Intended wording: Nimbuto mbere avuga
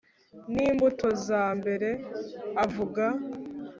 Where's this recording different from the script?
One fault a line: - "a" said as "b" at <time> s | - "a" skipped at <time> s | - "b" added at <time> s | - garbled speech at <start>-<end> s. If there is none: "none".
- "za" added at 1.3 s